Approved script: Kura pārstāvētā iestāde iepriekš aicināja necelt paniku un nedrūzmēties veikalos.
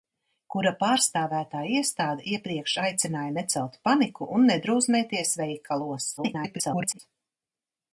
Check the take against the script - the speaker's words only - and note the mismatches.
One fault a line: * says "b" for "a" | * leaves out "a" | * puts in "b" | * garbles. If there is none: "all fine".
* garbles